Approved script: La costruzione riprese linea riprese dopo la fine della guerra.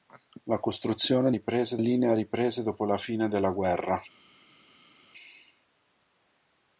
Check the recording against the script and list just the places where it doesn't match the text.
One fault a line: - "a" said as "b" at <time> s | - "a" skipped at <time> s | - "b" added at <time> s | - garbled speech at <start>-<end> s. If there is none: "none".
none